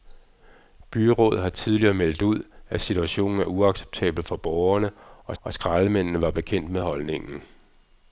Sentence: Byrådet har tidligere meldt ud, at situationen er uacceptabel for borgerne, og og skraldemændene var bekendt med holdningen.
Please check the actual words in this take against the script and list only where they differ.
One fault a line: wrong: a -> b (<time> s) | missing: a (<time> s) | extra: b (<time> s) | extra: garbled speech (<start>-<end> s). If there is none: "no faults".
no faults